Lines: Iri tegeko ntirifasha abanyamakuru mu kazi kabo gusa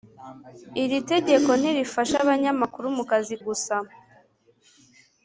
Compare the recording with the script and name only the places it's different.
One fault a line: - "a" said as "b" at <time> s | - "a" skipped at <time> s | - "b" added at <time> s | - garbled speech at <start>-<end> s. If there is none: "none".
- "kabo" skipped at 3.3 s